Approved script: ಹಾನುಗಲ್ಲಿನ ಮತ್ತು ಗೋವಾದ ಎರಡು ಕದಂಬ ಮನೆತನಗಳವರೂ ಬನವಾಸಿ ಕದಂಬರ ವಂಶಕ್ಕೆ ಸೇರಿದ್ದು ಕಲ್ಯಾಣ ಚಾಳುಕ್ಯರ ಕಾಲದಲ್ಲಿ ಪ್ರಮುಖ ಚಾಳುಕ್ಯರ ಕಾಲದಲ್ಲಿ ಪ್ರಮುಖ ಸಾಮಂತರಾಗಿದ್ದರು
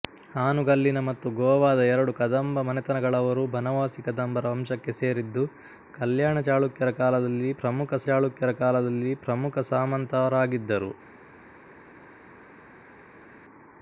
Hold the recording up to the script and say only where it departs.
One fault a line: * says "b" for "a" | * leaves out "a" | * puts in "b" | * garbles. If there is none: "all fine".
all fine